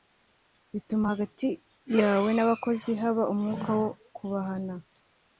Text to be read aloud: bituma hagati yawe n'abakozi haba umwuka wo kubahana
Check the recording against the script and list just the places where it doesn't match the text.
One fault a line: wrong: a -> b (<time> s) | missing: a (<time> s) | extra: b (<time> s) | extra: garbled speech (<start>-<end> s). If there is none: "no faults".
no faults